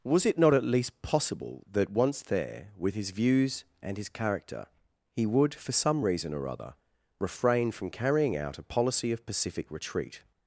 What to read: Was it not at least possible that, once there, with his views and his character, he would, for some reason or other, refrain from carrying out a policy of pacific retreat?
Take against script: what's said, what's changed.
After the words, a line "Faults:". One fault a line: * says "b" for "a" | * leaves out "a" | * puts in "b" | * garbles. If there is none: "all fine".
Was it not at least possible that, once there, with his views and his character, he would, for some reason or other, refrain from carrying out a policy of pacific retreat?
Faults:
all fine